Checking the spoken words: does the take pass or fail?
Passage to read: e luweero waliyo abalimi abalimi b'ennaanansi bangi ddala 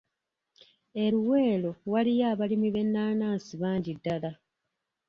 fail